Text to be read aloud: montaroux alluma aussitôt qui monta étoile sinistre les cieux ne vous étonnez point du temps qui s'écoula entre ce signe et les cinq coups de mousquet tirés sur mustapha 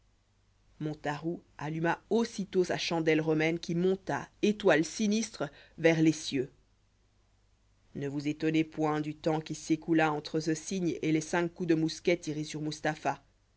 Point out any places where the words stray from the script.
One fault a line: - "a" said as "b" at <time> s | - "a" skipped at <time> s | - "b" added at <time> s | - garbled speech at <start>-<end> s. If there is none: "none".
- "sa chandelle romaine" added at 2.6 s
- "vers" added at 5.8 s